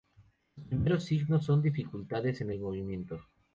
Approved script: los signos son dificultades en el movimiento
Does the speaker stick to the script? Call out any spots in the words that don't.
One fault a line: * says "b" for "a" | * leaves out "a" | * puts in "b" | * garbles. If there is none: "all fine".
* puts in "primeros"